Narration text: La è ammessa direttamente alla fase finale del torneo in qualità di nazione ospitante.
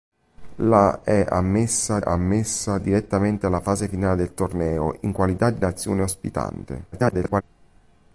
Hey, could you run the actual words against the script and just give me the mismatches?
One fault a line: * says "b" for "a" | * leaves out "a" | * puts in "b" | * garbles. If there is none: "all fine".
* puts in "ammessa"
* garbles